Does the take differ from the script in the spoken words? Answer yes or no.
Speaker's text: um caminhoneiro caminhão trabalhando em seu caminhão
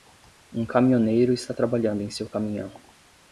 yes